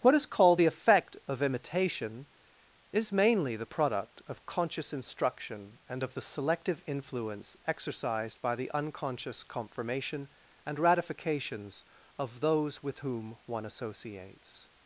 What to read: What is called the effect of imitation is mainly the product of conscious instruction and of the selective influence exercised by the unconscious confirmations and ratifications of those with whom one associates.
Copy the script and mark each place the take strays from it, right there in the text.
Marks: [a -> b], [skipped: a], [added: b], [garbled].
What is called the effect of imitation is mainly the product of conscious instruction and of the selective influence exercised by the unconscious [confirmations -> confirmation] and ratifications of those with whom one associates.